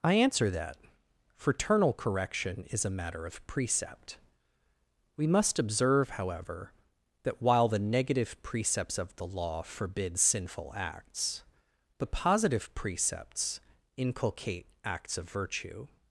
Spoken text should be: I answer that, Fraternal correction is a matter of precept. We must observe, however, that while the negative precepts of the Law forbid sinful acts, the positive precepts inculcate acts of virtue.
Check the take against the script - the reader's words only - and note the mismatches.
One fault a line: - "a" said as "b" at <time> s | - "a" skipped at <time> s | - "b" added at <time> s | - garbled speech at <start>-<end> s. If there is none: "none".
none